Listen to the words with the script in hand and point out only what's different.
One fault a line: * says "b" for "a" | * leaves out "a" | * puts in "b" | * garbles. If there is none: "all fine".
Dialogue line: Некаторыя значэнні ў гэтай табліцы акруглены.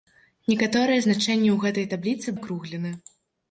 all fine